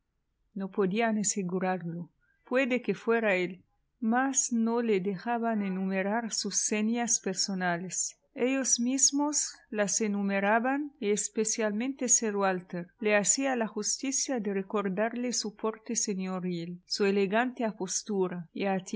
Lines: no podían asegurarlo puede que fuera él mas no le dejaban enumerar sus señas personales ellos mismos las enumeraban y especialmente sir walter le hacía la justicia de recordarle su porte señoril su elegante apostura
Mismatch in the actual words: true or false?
false